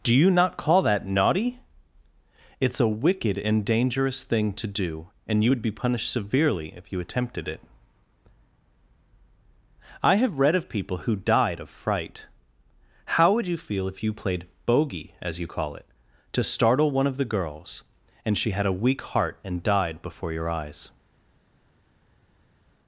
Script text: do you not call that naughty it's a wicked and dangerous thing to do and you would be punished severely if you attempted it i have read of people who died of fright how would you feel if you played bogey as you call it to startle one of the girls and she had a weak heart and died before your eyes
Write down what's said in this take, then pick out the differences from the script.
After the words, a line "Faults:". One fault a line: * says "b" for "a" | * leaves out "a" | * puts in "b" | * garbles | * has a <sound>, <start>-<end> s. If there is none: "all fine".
do you not call that naughty it's a wicked and dangerous thing to do and you would be punished severely if you attempted it i have read of people who died of fright how would you feel if you played bogey as you call it to startle one of the girls and she had a weak heart and died before your eyes
Faults:
all fine